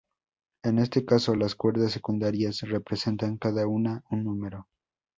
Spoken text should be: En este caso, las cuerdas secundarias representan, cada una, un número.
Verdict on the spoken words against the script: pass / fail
pass